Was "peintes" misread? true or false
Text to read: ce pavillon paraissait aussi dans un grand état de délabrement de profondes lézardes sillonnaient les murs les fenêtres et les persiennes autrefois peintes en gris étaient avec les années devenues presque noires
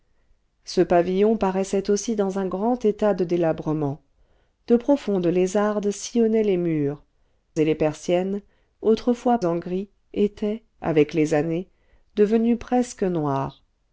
true